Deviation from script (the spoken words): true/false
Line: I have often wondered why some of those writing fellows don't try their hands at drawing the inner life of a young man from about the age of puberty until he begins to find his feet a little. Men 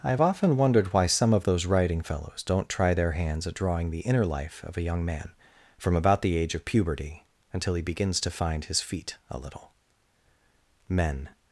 false